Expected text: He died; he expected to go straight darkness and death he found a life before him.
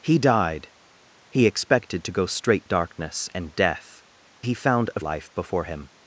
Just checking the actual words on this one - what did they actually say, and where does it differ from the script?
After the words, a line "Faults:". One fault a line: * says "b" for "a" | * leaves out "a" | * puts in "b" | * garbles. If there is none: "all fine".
He died; he expected to go straight darkness and death he found a life before him.
Faults:
all fine